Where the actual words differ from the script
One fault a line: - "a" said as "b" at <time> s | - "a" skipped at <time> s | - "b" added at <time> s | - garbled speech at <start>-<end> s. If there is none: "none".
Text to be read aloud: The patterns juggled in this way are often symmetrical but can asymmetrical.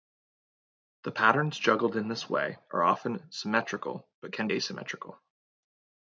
none